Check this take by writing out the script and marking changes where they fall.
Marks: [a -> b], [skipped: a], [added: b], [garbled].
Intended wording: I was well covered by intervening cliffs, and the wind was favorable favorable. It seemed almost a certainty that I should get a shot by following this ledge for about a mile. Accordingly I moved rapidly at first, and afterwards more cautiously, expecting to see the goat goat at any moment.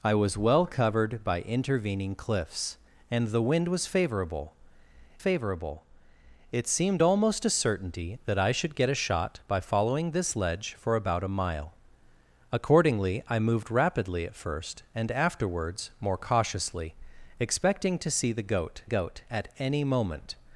I was well covered by intervening cliffs, and the wind was favorable favorable. It seemed almost a certainty that I should get a shot by following this ledge for about a mile. Accordingly I moved rapidly at first, and afterwards more cautiously, expecting to see the goat goat at any moment.